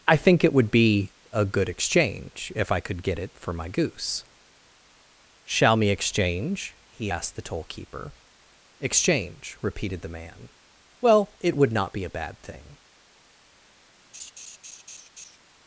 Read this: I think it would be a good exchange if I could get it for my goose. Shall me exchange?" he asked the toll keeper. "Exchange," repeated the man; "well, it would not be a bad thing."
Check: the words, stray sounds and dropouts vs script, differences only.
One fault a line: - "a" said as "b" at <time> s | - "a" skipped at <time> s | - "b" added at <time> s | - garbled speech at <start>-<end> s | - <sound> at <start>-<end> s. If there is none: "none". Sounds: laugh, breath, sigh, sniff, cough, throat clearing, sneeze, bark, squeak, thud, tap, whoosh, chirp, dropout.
- laugh at 14.1-15.4 s